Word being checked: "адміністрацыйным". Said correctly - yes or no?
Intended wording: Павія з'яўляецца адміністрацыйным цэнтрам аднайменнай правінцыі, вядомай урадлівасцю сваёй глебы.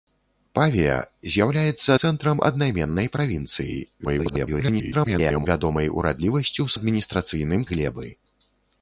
no